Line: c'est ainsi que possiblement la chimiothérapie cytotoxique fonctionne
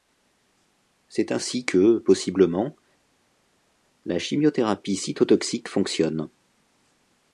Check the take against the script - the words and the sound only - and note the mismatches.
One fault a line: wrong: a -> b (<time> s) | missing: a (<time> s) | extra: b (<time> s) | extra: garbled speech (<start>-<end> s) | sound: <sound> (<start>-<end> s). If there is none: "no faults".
no faults